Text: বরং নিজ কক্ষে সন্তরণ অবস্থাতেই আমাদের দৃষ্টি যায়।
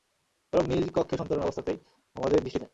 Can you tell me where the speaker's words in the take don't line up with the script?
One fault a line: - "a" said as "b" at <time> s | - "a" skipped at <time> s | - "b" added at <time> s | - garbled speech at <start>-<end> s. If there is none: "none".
none